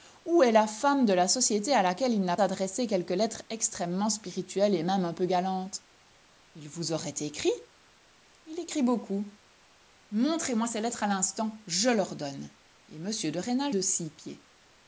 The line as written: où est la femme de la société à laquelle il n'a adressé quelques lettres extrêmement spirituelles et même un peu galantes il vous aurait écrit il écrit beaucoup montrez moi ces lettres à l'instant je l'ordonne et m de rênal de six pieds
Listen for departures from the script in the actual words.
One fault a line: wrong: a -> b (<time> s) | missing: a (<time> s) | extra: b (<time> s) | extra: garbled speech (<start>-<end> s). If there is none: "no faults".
no faults